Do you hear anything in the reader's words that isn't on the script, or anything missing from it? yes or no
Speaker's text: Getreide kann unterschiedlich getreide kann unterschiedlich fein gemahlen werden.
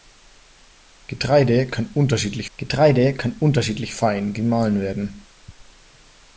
no